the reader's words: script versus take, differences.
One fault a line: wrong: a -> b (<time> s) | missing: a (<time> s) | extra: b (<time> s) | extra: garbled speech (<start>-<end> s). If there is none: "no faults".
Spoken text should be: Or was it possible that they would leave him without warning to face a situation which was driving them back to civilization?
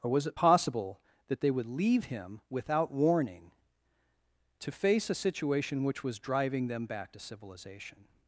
no faults